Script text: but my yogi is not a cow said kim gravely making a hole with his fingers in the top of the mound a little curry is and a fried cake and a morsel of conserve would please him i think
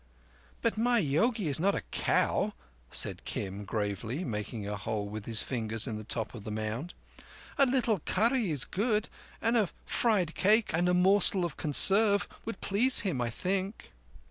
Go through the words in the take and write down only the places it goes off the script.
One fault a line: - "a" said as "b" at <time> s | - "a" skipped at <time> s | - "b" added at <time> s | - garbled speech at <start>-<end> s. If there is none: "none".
- "good" added at 8.6 s